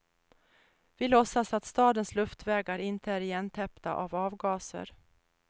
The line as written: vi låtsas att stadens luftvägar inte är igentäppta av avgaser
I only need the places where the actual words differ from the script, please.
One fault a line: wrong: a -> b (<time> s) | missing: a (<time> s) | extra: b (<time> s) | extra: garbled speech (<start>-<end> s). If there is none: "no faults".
no faults